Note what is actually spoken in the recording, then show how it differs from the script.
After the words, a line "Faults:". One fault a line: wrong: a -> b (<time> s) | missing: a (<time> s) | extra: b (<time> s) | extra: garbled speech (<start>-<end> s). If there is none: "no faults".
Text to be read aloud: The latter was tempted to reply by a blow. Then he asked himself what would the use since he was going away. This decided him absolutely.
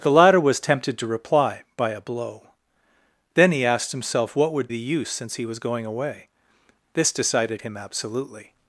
The latter was tempted to reply by a blow. Then he asked himself what would the use since he was going away. This decided him absolutely.
Faults:
no faults